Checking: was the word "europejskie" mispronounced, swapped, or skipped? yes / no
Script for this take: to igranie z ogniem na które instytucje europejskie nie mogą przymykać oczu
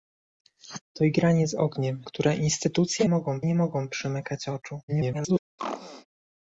yes